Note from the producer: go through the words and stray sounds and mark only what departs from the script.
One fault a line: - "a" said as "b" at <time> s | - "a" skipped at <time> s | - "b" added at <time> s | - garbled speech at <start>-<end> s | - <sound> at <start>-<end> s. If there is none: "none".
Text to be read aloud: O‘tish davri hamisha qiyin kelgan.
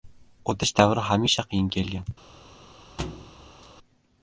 - thud at 3.0-3.7 s